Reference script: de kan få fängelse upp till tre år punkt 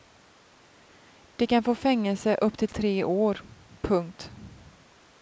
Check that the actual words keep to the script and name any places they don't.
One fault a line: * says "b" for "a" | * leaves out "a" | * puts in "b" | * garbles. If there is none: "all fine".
all fine